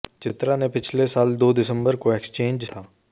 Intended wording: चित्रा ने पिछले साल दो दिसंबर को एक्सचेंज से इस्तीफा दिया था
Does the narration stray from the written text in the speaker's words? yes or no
yes